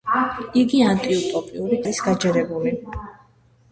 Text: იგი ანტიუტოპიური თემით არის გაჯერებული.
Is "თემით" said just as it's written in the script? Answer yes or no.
no